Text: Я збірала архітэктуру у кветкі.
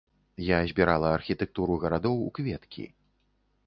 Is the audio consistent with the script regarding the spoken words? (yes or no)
no